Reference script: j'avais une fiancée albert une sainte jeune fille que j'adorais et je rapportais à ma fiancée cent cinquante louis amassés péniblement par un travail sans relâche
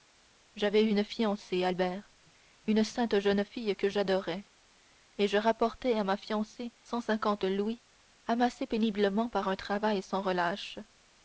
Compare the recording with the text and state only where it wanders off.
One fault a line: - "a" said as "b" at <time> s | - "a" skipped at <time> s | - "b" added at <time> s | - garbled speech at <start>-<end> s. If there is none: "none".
none